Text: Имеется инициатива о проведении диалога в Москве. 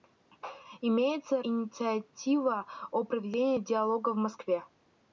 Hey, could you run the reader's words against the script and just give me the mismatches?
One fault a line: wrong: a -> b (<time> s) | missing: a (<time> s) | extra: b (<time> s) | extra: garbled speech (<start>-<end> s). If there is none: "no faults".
no faults